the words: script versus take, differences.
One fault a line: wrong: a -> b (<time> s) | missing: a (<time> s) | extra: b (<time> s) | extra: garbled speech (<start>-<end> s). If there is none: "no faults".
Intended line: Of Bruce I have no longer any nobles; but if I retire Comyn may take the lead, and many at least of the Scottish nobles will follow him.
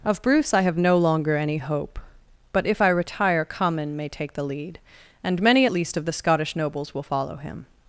wrong: nobles -> hope (1.6 s)